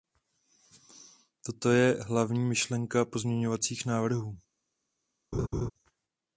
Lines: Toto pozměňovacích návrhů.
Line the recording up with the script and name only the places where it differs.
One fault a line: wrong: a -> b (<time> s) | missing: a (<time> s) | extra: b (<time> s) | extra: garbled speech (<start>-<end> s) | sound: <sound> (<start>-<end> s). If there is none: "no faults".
extra: je hlavní myšlenka (1.7 s)
sound: laugh (5.3-5.7 s)